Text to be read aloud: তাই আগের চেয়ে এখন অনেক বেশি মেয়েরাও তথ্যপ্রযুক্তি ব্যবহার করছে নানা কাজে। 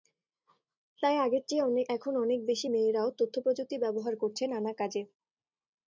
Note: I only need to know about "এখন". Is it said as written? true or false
true